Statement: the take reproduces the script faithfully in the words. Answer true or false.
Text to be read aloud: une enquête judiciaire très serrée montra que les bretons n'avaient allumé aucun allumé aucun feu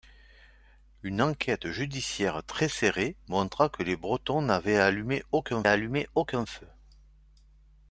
true